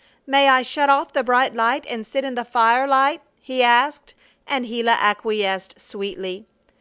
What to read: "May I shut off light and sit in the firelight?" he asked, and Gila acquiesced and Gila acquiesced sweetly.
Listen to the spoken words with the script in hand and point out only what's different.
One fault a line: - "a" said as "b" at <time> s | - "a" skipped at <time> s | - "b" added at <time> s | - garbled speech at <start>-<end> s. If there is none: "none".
- "the bright" added at 1.1 s
- "and Gila acquiesced" skipped at 5.8 s